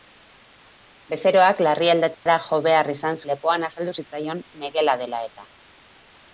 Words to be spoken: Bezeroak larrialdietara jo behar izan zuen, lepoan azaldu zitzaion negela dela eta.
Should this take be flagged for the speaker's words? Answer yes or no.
yes